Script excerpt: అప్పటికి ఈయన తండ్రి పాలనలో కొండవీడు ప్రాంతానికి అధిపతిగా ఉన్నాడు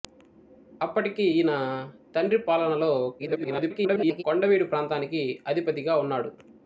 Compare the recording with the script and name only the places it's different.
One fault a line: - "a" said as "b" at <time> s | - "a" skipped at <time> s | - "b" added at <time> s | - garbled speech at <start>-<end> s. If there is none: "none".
- garbled speech at 3.2-4.2 s